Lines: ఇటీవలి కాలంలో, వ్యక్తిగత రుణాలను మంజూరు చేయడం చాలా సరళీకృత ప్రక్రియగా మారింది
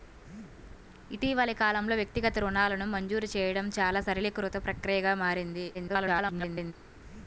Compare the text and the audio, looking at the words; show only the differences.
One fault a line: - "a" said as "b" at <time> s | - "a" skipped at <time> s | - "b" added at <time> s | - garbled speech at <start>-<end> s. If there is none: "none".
- garbled speech at 5.7-6.7 s